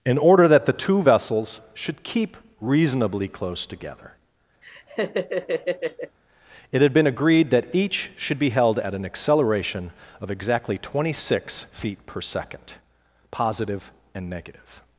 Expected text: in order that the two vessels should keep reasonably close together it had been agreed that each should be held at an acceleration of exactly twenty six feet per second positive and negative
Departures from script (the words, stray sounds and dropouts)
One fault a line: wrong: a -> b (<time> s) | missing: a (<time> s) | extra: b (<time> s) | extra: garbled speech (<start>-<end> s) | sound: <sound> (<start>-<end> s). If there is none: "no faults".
sound: laugh (4.6-6.2 s)